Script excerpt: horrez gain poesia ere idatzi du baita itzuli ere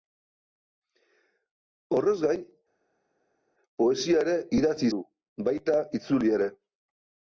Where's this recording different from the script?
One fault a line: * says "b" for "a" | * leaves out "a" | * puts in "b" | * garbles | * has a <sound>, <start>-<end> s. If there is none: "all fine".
all fine